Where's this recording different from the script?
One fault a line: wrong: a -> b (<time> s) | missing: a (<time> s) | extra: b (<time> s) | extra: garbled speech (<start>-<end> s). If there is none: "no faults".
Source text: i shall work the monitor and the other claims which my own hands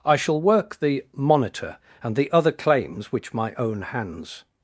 no faults